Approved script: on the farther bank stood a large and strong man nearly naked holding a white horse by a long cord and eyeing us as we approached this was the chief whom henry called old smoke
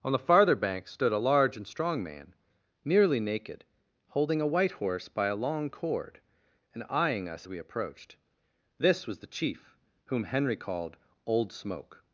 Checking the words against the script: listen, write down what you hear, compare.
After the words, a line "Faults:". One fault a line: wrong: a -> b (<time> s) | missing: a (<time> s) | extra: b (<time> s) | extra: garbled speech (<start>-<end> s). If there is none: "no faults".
on the farther bank stood a large and strong man nearly naked holding a white horse by a long cord and eyeing us we approached this was the chief whom henry called old smoke
Faults:
missing: as (7.5 s)